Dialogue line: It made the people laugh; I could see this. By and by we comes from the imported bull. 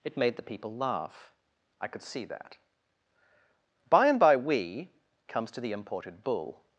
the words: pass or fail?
fail